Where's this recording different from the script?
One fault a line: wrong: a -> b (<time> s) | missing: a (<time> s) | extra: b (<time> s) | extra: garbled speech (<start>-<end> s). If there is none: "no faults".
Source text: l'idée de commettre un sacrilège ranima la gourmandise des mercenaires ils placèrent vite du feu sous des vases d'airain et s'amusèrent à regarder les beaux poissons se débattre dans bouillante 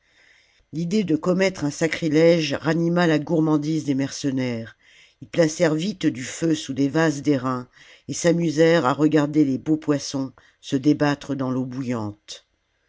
extra: l'eau (11.5 s)